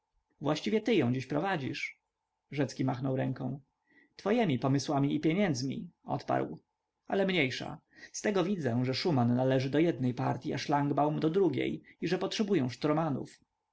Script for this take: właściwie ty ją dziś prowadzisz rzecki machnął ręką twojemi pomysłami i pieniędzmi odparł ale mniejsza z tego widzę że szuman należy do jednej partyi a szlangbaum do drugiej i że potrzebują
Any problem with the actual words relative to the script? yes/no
no